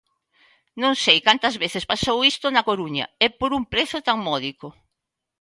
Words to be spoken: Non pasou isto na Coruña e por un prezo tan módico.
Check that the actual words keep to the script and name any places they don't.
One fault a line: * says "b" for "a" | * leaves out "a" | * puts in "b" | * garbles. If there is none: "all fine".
* puts in "sei cantas veces"